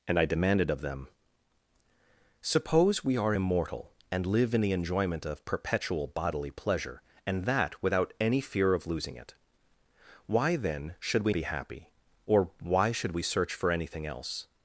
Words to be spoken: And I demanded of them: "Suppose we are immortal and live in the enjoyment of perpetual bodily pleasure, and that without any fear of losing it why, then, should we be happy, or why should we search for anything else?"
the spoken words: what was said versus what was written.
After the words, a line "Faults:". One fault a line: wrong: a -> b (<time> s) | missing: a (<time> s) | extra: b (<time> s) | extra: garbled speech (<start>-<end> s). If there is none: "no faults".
And I demanded of them: "Suppose we are immortal and live in the enjoyment of perpetual bodily pleasure, and that without any fear of losing it why, then, should we be happy, or why should we search for anything else?"
Faults:
no faults